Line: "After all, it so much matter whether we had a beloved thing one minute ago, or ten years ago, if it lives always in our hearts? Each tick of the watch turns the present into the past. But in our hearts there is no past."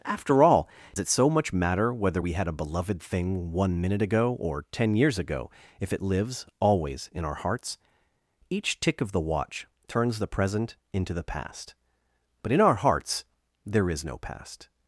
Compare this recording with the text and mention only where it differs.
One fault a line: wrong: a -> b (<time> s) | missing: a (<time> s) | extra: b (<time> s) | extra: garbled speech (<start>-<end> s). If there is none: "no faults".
no faults